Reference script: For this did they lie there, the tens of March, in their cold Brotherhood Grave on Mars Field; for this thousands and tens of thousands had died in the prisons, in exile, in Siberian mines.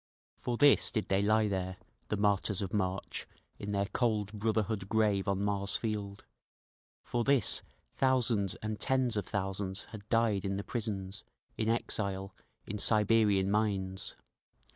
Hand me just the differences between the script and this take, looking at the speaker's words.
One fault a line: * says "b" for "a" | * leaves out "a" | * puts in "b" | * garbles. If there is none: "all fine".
* says "martyrs" for "tens"